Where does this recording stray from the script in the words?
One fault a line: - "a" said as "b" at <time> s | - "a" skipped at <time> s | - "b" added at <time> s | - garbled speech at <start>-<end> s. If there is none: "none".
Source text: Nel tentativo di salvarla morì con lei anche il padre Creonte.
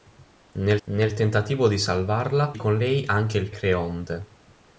- "nel" added at 0.9 s
- "morì" skipped at 2.6 s
- "padre" skipped at 3.5 s